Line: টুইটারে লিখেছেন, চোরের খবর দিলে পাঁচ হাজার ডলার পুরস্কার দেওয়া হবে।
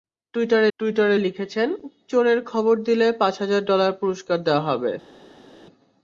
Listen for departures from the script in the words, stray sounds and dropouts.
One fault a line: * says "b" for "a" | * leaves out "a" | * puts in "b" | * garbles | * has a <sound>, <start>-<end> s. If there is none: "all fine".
* puts in "টুইটারে"